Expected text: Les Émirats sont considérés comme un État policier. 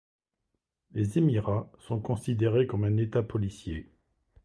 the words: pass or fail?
pass